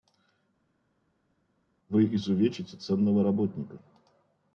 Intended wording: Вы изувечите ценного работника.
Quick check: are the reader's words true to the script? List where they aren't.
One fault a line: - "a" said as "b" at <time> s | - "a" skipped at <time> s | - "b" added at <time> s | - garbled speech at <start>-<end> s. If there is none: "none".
none